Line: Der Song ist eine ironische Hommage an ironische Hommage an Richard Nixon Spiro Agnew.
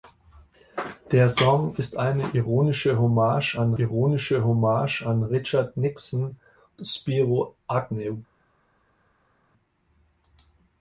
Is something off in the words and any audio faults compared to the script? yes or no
no